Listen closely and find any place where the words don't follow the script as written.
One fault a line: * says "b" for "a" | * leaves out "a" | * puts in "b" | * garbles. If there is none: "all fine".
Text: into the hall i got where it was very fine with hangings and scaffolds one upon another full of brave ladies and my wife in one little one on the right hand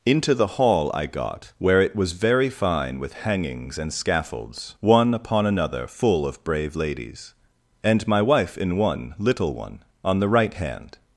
all fine